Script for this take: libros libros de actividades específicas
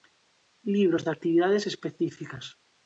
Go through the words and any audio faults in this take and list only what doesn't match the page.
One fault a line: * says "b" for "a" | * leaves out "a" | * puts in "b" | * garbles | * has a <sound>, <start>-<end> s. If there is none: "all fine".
* leaves out "libros"